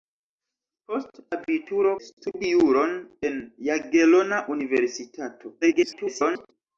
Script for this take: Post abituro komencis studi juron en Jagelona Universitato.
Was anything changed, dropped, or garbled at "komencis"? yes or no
yes